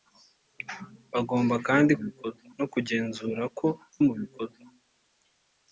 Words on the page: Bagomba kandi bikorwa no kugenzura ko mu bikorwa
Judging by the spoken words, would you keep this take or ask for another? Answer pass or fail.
pass